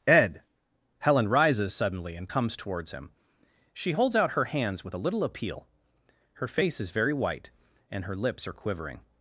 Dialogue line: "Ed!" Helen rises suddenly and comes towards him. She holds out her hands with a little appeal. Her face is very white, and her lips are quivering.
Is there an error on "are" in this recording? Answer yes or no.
no